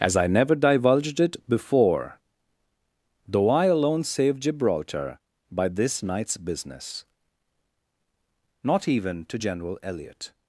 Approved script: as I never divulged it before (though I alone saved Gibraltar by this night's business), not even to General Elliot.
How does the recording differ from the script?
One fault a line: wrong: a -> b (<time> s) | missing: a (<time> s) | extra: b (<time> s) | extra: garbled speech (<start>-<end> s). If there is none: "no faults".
no faults